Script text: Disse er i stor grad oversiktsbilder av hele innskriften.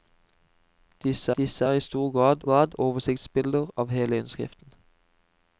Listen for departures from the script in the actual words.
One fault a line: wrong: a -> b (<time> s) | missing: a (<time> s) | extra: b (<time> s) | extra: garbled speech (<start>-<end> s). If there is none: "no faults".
extra: disse (1.4 s)
extra: grad (2.4 s)